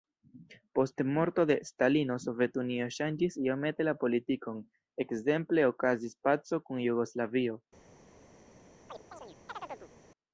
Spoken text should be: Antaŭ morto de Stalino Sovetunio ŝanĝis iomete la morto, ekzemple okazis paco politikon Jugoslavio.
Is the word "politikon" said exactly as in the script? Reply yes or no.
no